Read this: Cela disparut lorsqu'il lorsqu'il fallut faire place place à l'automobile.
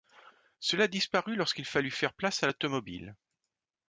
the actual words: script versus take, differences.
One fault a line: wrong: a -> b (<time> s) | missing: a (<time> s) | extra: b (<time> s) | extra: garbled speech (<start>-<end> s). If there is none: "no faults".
missing: lorsqu'il (1.6 s)
missing: place (2.4 s)